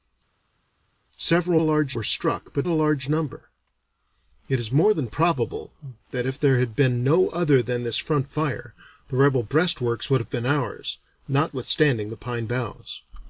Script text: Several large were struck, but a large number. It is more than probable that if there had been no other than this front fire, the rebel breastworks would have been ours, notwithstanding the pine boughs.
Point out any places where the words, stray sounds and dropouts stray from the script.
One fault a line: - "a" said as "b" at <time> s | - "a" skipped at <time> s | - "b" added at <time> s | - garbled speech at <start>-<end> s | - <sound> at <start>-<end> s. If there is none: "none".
none